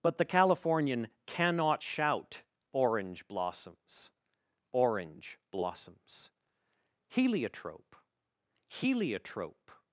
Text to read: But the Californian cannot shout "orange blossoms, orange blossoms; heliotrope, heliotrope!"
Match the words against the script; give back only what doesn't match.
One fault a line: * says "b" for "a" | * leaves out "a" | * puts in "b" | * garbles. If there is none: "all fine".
all fine